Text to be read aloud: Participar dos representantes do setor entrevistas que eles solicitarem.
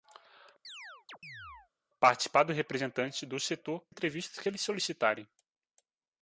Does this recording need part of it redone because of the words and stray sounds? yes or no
yes